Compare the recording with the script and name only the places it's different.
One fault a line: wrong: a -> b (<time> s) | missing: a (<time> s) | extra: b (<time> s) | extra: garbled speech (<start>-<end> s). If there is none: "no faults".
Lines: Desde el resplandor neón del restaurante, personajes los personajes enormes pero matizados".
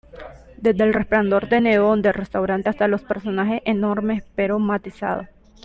extra: de (1.5 s)
wrong: personajes -> hasta (2.7 s)